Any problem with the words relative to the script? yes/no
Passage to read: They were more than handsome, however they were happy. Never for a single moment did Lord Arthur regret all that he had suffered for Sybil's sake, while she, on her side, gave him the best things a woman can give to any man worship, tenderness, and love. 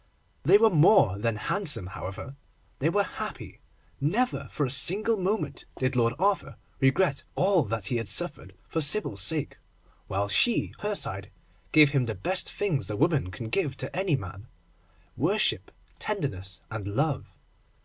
yes